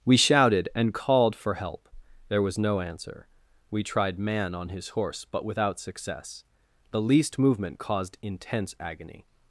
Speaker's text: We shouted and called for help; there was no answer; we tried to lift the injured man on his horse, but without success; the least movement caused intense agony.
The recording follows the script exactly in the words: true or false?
false